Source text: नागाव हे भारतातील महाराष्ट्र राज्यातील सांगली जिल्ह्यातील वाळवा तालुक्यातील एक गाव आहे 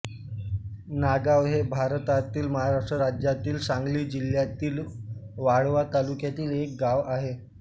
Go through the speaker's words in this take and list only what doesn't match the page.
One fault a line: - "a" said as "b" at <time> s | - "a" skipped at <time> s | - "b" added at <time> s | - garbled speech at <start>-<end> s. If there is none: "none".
none